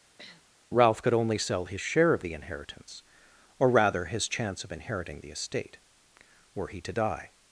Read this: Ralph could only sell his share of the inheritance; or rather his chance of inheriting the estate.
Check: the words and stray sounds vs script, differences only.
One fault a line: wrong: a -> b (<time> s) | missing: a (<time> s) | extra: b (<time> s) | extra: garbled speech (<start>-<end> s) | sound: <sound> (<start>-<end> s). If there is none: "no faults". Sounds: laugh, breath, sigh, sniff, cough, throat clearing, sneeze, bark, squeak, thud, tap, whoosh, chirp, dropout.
sound: sniff (0.2-0.5 s)
extra: Were he to die (6.5 s)